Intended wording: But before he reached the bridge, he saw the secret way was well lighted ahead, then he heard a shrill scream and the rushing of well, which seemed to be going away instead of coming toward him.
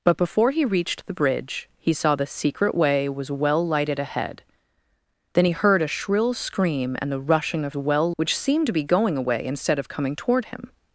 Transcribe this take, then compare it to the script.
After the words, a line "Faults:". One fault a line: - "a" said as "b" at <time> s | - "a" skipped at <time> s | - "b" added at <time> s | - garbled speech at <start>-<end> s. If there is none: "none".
But before he reached the bridge, he saw the secret way was well lighted ahead, then he heard a shrill scream and the rushing of well, which seemed to be going away instead of coming toward him.
Faults:
none